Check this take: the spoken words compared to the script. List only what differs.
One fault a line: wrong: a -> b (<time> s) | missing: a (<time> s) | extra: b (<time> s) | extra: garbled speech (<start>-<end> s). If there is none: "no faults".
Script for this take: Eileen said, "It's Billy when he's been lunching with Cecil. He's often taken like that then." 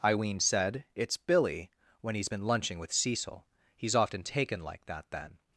no faults